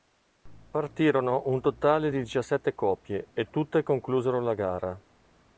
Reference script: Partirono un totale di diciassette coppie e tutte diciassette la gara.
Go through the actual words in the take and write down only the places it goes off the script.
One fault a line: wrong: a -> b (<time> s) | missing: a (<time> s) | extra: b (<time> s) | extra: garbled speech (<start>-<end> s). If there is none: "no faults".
wrong: diciassette -> conclusero (3.8 s)